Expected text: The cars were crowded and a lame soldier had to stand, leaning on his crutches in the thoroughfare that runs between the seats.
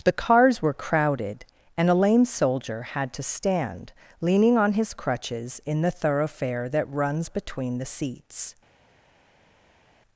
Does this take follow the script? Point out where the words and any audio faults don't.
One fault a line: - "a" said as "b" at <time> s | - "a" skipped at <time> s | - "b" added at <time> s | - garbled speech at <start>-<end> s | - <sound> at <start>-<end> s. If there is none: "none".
none